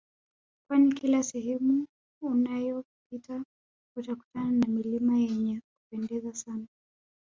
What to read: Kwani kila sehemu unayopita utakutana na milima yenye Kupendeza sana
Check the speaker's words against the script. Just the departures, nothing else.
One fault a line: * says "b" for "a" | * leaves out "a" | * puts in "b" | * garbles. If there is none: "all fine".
all fine